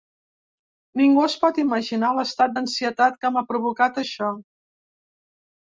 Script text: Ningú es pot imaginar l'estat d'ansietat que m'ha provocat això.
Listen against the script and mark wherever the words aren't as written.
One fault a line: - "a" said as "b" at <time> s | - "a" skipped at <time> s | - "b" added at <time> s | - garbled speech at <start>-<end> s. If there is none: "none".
none